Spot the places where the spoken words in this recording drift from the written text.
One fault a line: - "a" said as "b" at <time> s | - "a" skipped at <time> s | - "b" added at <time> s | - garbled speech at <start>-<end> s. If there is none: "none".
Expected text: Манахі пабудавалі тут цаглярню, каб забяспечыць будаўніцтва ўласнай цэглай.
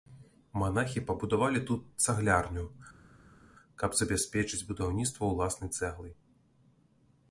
none